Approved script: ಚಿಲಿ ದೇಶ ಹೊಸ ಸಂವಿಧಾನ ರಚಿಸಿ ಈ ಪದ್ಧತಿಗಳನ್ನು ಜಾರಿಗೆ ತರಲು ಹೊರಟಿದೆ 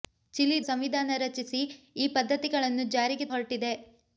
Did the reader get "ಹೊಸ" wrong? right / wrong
wrong